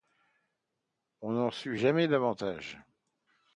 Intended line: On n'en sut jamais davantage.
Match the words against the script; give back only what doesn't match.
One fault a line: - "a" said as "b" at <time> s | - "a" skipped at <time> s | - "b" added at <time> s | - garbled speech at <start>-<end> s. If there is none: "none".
none